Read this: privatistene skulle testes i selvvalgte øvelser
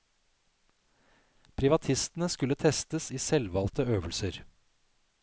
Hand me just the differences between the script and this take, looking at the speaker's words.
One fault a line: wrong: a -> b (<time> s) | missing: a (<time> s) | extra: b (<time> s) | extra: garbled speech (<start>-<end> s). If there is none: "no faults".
no faults